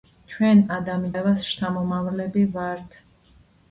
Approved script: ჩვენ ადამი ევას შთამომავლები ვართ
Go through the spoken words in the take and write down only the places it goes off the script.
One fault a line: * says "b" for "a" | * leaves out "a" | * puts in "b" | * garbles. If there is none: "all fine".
all fine